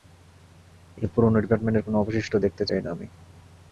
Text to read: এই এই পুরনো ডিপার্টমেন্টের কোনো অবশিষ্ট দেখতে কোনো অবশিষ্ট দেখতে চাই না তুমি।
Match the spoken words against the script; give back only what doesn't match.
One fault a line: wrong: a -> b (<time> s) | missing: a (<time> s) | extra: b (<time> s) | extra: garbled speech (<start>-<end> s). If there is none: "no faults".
missing: এই (1.1 s)
missing: কোনো অবশিষ্ট দেখতে (2.6 s)
wrong: তুমি -> আমি (2.9 s)